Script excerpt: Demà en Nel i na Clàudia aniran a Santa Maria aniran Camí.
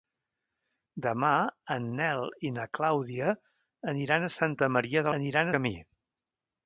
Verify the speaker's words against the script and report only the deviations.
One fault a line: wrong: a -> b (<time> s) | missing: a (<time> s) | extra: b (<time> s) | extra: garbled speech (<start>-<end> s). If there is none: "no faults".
no faults